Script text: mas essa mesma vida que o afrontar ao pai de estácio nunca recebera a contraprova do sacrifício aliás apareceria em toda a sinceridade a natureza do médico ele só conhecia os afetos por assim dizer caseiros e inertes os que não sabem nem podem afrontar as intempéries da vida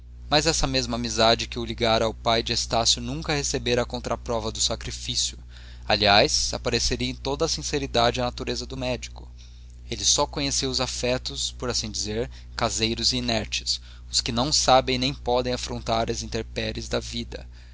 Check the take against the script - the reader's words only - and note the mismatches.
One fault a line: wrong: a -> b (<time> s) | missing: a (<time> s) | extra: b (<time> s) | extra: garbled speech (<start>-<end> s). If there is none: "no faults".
wrong: vida -> amizade (0.9 s)
wrong: afrontar -> ligara (1.6 s)